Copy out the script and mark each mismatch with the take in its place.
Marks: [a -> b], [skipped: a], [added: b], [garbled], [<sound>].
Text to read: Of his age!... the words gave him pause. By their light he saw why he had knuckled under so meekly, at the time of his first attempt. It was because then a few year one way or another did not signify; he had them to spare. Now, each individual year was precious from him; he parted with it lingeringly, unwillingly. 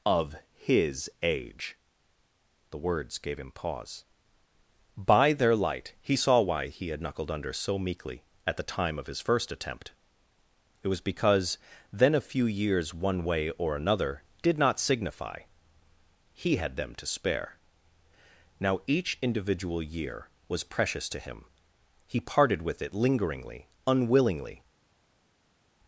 Of his age!... the words gave him pause. By their light he saw why he had knuckled under so meekly, at the time of his first attempt. It was because then a few [year -> years] one way or another did not signify; he had them to spare. Now, each individual year was precious [from -> to] him; he parted with it lingeringly, unwillingly.